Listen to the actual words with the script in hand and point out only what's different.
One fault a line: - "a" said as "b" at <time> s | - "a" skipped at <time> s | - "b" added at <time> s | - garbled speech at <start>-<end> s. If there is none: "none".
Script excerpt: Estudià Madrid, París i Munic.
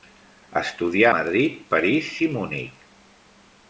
none